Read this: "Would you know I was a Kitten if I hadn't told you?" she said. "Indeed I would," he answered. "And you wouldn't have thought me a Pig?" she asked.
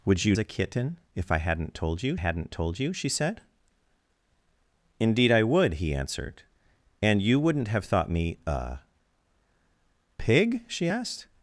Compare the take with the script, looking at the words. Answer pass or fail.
fail